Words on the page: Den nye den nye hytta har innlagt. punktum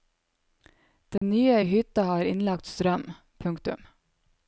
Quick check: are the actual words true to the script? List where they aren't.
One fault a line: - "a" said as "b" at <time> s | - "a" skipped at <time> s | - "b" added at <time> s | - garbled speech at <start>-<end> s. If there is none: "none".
- "den nye" skipped at 1.6 s
- "strøm" added at 2.6 s